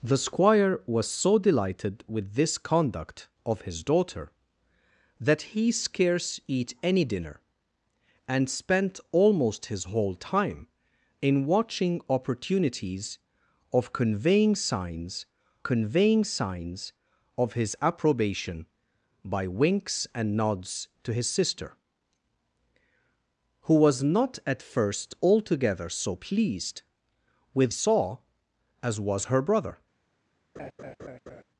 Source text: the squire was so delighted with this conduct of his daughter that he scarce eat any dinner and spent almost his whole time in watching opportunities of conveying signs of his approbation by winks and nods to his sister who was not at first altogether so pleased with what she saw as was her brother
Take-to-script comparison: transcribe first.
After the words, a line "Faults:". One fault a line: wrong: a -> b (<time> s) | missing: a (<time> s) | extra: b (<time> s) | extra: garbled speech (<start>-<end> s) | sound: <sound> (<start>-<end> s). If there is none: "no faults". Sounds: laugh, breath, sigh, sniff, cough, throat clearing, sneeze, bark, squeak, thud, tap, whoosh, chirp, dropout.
the squire was so delighted with this conduct of his daughter that he scarce eat any dinner and spent almost his whole time in watching opportunities of conveying signs conveying signs of his approbation by winks and nods to his sister who was not at first altogether so pleased with saw as was her brother
Faults:
extra: conveying signs (15.6 s)
missing: what she (27.7 s)
sound: laugh (30.6-31.4 s)